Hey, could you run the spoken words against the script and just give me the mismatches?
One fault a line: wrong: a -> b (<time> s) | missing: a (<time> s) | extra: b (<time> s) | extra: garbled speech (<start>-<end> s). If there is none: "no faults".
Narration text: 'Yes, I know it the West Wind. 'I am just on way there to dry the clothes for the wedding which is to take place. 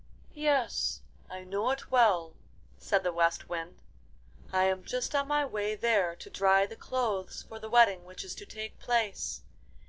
extra: well said (1.9 s)
extra: my (5.3 s)